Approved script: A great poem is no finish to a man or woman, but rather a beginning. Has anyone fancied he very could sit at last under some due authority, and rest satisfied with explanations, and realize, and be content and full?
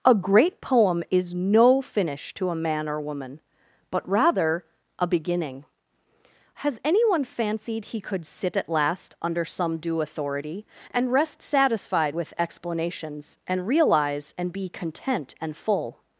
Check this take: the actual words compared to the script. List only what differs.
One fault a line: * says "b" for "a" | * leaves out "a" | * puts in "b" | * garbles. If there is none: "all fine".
* leaves out "very"